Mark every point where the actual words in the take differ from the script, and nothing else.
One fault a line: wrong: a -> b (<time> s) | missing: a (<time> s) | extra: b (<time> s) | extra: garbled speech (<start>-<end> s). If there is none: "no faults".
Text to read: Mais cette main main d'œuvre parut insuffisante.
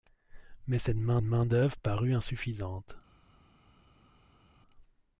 no faults